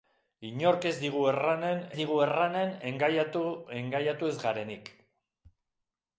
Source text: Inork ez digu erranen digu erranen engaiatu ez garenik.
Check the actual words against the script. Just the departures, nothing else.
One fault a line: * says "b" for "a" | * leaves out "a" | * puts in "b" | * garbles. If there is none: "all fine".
all fine